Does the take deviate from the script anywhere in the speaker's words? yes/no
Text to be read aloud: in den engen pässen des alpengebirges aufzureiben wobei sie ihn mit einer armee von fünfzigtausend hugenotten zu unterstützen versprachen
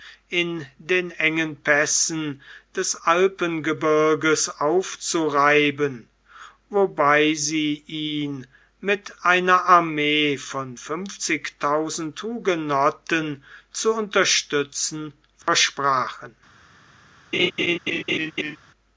no